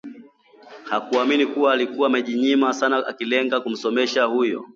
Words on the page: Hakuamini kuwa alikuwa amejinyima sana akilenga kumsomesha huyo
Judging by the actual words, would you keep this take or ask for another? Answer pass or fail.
pass